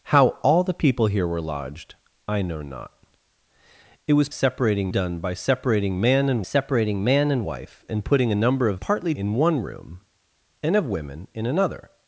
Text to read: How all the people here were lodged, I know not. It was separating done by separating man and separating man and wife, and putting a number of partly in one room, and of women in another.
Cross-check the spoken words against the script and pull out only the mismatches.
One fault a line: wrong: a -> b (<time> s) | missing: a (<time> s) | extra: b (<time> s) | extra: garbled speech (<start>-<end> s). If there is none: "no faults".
no faults